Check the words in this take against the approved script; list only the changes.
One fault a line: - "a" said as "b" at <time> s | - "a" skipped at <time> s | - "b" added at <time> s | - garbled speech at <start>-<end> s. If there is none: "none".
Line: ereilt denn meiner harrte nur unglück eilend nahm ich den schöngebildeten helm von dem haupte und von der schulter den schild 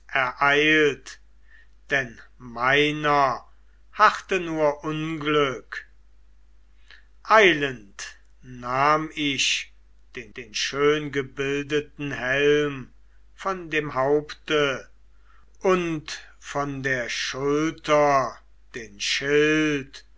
- "den" added at 10.4 s